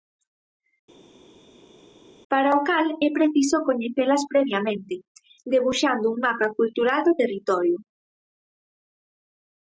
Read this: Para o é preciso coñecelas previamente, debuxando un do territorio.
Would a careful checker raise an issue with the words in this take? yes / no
yes